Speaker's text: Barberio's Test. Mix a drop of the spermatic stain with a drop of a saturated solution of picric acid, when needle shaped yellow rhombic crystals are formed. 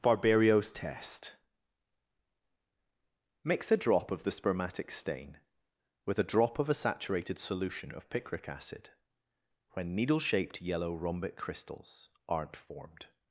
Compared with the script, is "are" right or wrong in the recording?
wrong